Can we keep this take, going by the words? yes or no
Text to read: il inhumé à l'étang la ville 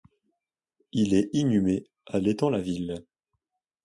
no